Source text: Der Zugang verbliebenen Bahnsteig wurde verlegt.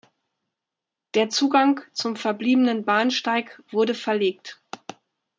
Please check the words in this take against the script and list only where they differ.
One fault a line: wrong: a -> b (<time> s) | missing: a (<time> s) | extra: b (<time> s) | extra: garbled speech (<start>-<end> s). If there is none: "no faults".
extra: zum (1.9 s)